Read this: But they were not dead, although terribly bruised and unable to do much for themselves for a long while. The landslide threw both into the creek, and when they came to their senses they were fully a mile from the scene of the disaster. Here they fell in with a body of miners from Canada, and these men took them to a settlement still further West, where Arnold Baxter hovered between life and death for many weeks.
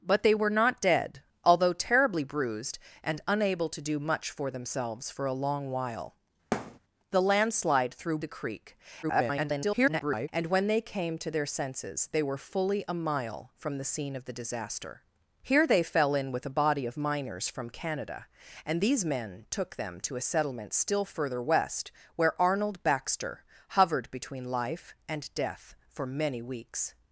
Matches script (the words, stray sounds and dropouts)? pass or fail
fail